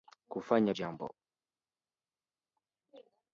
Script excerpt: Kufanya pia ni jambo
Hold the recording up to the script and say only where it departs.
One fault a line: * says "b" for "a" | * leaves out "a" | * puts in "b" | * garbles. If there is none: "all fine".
* leaves out "pia ni"